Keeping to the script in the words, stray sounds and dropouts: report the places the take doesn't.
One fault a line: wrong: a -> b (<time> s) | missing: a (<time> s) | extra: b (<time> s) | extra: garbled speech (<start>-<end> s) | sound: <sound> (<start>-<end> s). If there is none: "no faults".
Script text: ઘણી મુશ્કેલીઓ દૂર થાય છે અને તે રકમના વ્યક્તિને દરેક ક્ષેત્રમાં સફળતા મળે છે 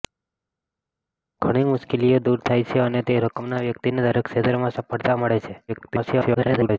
extra: garbled speech (5.7-6.8 s)